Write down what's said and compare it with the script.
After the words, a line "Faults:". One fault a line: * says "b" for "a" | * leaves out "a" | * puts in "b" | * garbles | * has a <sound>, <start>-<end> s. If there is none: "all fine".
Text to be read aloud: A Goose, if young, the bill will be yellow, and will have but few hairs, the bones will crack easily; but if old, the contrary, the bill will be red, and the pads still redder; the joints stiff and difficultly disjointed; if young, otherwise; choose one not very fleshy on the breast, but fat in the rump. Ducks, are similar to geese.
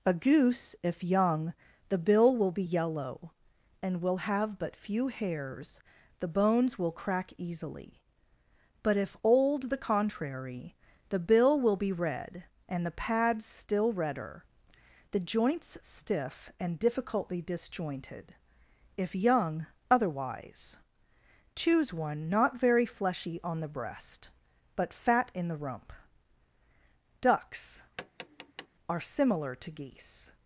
A Goose, if young, the bill will be yellow, and will have but few hairs, the bones will crack easily; but if old, the contrary, the bill will be red, and the pads still redder; the joints stiff and difficultly disjointed; if young, otherwise; choose one not very fleshy on the breast, but fat in the rump. Ducks, are similar to geese.
Faults:
* has a tap, 28.0-28.7 s